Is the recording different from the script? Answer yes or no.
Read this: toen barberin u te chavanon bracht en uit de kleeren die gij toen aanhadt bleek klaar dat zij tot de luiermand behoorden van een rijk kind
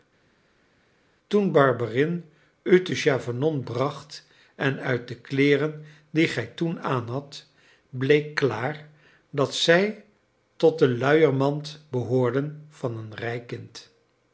no